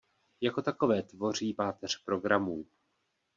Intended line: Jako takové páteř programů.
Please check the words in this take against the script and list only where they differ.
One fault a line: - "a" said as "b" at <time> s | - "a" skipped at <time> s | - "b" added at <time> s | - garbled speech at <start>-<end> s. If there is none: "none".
- "tvoří" added at 1.0 s